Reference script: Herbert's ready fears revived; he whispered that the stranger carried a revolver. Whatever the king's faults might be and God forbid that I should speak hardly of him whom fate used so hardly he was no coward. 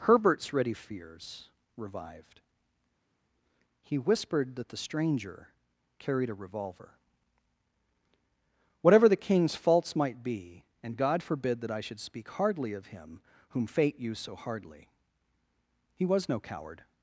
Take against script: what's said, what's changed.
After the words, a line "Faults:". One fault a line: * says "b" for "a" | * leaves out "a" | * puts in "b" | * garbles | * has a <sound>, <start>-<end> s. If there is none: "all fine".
Herbert's ready fears revived; he whispered that the stranger carried a revolver. Whatever the king's faults might be and God forbid that I should speak hardly of him whom fate used so hardly he was no coward.
Faults:
all fine